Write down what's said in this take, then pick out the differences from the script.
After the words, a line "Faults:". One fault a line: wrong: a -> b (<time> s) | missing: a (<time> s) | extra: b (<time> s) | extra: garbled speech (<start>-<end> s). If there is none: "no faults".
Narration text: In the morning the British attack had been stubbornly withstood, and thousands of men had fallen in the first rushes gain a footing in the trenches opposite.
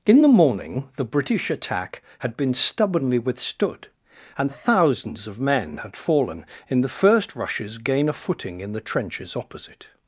In the morning the British attack had been stubbornly withstood, and thousands of men had fallen in the first rushes gain a footing in the trenches opposite.
Faults:
no faults